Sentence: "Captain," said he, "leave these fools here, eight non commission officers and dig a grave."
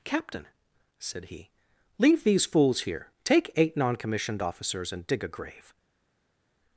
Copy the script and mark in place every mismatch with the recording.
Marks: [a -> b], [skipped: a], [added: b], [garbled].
"Captain," said he, "leave these fools here, [added: take] eight non [commission -> commissioned] officers and dig a grave."